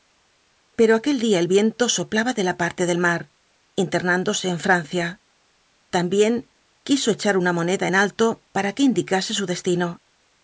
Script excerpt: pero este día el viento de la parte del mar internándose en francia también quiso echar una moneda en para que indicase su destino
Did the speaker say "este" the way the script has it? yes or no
no